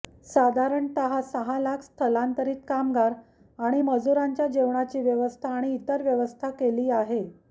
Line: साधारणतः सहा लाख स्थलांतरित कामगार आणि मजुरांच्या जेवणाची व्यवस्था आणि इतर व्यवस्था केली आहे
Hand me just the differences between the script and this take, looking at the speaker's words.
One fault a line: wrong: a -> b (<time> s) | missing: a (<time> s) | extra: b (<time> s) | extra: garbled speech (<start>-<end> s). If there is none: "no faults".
no faults